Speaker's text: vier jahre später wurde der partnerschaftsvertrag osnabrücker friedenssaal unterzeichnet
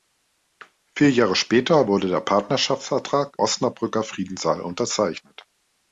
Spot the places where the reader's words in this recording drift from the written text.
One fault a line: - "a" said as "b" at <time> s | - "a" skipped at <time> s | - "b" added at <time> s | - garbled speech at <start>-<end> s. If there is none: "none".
none